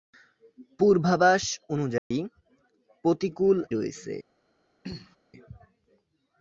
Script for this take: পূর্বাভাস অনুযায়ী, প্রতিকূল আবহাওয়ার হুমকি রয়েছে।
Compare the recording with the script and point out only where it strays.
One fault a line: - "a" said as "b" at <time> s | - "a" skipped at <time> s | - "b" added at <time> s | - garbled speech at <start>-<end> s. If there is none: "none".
- "আবহাওয়ার হুমকি" skipped at 3.6 s